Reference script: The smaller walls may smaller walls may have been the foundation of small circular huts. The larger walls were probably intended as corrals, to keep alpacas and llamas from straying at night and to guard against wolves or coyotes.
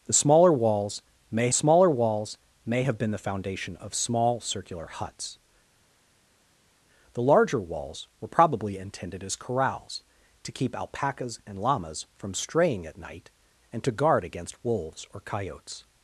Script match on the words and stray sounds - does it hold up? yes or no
yes